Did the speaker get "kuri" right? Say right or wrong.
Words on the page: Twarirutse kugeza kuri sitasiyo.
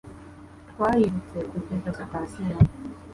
wrong